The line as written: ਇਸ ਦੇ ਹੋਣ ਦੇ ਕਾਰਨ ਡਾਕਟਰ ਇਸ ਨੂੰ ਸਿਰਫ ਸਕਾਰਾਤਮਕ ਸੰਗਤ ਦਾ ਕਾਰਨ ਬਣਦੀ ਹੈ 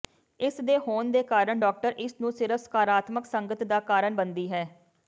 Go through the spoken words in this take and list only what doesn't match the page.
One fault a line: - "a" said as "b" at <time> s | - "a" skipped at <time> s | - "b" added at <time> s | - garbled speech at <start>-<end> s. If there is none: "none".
none